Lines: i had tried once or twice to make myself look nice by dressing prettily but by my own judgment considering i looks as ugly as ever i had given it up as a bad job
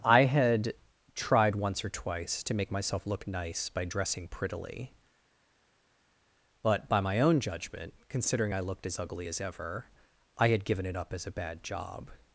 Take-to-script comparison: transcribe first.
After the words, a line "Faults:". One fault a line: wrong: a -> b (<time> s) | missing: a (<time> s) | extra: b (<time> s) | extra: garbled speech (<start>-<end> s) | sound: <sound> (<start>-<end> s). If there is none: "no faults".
i had tried once or twice to make myself look nice by dressing prettily but by my own judgment considering i looked as ugly as ever i had given it up as a bad job
Faults:
wrong: looks -> looked (8.6 s)